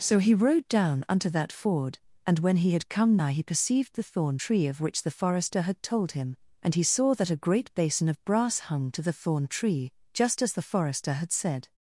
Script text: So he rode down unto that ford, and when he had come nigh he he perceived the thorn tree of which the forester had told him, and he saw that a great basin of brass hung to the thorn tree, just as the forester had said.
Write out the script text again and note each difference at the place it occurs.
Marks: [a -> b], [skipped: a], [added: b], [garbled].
So he rode down unto that ford, and when he had come nigh he [skipped: he] perceived the thorn tree of which the forester had told him, and he saw that a great basin of brass hung to the thorn tree, just as the forester had said.